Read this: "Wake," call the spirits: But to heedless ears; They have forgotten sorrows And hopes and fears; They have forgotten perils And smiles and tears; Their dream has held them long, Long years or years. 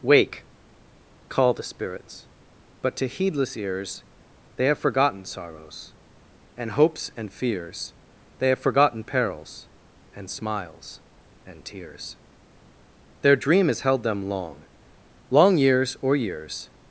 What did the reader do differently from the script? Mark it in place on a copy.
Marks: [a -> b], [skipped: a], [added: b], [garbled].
"Wake," call the spirits: But to heedless ears; They have forgotten sorrows And hopes and fears; They have forgotten perils And smiles and tears; Their dream has held them long, Long years or years.